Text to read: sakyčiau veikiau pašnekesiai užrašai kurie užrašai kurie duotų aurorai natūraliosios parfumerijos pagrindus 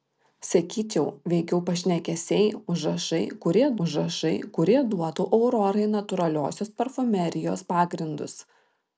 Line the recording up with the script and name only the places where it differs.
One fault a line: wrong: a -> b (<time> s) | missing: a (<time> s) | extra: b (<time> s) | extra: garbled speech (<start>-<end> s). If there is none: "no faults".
no faults